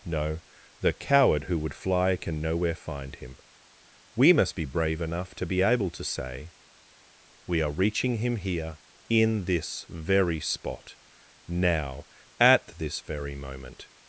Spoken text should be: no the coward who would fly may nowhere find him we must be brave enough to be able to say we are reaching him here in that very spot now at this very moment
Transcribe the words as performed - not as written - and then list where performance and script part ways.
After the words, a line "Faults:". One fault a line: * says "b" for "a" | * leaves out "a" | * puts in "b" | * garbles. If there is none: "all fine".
no the coward who would fly can nowhere find him we must be brave enough to be able to say we are reaching him here in this very spot now at this very moment
Faults:
* says "can" for "may"
* says "this" for "that"